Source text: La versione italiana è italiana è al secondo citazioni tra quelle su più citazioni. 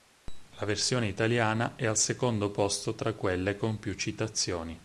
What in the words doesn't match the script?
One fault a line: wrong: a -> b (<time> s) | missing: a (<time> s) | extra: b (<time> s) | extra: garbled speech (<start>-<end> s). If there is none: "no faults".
missing: italiana è (1.9 s)
wrong: citazioni -> posto (2.5 s)
wrong: su -> con (3.5 s)